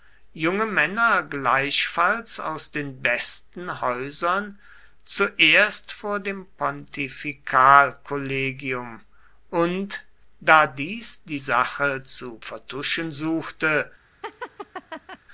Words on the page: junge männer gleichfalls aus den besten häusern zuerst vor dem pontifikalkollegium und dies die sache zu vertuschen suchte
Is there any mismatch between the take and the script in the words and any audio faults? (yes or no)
yes